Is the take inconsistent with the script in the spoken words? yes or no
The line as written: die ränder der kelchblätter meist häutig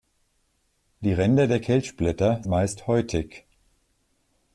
no